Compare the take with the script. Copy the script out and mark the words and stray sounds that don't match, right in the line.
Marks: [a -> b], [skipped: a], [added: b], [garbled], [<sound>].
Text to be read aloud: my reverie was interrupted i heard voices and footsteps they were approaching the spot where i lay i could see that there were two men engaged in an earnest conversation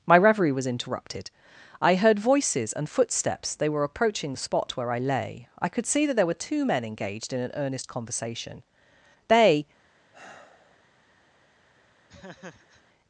my reverie was interrupted i heard voices and footsteps they were approaching the spot where i lay i could see that there were two men engaged in an earnest conversation [added: they] [sigh] [laugh]